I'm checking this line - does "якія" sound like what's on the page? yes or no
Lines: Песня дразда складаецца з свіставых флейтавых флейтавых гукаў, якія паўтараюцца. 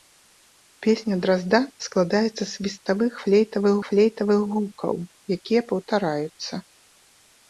yes